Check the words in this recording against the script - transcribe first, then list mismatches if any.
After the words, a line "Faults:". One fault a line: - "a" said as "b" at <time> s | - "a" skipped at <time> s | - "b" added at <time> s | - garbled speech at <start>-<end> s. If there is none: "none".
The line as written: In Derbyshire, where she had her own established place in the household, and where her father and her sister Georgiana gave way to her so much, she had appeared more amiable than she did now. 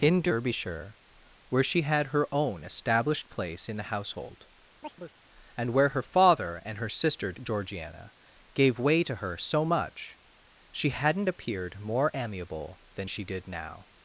In Derbyshire, where she had her own established place in the household, and where her father and her sister Georgiana gave way to her so much, she hadn't appeared more amiable than she did now.
Faults:
- "had" said as "hadn't" at 10.9 s